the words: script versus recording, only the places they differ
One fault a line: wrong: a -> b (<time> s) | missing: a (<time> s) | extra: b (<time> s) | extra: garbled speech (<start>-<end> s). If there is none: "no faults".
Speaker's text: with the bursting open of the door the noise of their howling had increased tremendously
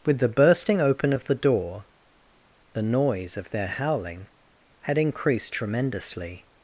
no faults